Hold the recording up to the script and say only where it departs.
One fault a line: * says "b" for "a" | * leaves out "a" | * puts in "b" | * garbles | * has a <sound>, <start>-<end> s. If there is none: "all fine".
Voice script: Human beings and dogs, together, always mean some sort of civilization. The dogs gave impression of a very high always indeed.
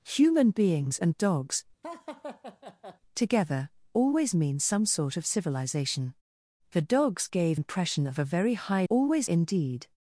* has a laugh, 1.8-3.0 s